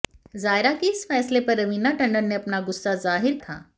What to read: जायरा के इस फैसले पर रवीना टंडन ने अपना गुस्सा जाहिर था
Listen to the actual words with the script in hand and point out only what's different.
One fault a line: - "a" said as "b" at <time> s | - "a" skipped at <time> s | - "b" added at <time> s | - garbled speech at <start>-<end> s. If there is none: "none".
none